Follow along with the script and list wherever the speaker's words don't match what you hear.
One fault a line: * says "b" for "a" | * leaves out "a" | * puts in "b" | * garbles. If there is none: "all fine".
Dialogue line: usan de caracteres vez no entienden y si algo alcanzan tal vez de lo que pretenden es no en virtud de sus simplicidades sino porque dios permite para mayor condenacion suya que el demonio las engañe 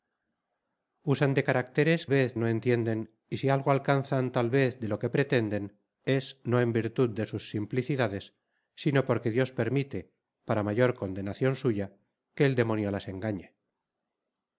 all fine